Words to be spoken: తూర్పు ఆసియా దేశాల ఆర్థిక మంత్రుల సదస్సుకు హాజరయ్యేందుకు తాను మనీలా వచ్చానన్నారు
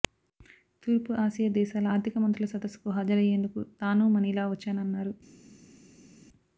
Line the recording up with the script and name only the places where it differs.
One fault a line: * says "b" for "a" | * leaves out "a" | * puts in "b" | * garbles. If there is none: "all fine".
all fine